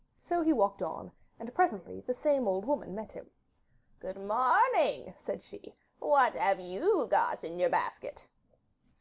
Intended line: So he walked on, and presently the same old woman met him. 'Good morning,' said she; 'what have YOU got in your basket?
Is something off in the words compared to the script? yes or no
no